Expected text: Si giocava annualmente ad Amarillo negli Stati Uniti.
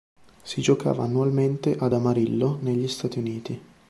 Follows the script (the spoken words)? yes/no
yes